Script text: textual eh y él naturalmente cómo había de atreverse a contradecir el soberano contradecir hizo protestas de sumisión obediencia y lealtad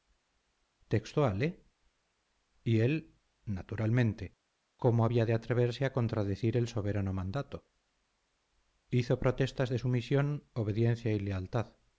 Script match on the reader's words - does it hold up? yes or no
no